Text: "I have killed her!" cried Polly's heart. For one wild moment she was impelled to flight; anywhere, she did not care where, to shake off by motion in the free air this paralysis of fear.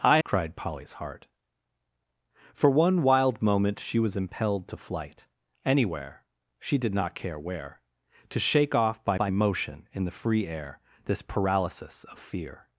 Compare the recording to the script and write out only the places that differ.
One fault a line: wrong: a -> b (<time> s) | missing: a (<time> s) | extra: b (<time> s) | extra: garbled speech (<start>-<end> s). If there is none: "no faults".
missing: have killed her (0.2 s)
extra: by (9.2 s)